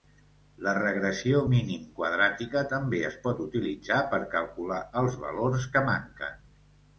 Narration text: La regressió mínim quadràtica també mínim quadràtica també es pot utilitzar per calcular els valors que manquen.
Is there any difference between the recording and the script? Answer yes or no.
yes